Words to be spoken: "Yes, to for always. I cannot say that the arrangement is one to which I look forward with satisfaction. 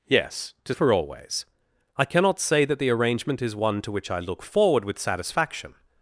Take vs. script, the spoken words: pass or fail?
pass